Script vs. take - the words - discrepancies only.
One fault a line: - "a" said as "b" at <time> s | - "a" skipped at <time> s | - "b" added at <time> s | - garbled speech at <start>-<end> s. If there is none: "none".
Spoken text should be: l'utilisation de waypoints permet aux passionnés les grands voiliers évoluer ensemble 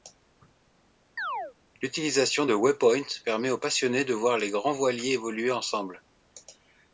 - "de voir" added at 4.0 s